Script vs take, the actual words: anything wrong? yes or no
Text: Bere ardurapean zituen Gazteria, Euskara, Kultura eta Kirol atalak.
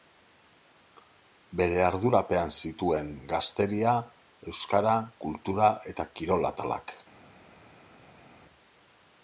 no